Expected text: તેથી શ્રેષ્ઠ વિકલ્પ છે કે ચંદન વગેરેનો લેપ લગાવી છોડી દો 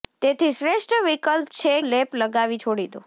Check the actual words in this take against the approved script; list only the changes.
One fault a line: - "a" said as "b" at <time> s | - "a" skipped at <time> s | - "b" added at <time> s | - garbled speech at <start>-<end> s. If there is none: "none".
- "કે ચંદન વગેરેનો" skipped at 1.7 s